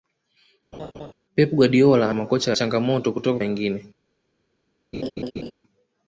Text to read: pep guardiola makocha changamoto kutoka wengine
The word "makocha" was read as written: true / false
true